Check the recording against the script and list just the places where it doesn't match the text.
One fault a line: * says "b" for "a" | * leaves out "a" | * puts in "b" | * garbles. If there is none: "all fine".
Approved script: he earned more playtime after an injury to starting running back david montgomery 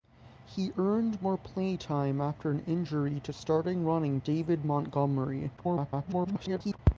* leaves out "back"
* garbles